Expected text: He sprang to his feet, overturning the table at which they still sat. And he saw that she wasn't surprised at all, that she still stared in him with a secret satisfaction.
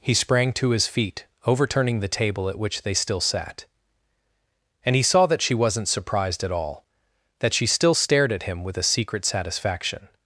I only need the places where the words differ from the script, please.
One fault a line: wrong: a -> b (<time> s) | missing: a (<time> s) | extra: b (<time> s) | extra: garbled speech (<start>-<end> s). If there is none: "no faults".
wrong: in -> at (8.3 s)